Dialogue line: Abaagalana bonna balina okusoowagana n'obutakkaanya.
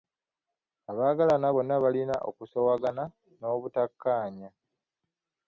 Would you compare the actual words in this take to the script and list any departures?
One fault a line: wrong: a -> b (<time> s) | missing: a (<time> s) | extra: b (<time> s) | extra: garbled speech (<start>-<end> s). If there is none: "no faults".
no faults